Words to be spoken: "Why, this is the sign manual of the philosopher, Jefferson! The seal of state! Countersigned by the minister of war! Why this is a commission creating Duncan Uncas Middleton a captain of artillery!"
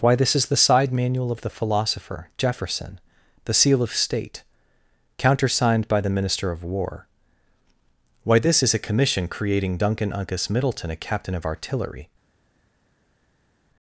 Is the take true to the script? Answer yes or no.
no